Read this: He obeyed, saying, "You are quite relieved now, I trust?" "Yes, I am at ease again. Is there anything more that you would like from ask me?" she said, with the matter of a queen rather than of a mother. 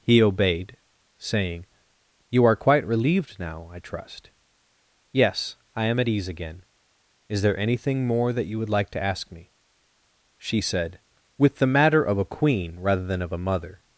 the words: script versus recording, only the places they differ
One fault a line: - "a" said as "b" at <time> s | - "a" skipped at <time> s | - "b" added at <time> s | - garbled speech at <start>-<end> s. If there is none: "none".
- "from" said as "to" at 8.9 s